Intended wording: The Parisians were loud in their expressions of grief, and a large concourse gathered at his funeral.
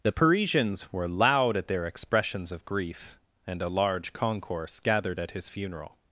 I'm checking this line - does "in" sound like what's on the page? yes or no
no